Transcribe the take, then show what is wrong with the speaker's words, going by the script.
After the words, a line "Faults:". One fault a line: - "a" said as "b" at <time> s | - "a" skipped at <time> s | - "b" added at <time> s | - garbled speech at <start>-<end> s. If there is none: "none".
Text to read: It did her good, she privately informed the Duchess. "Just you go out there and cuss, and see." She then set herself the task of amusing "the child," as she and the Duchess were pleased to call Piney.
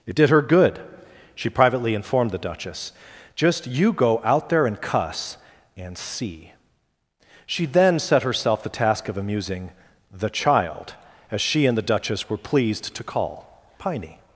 It did her good, she privately informed the Duchess. "Just you go out there and cuss, and see." She then set herself the task of amusing "the child," as she and the Duchess were pleased to call Piney.
Faults:
none